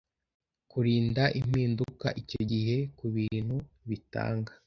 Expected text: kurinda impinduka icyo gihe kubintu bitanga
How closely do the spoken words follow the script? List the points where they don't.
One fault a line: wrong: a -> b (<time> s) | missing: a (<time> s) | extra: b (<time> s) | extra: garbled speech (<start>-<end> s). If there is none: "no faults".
no faults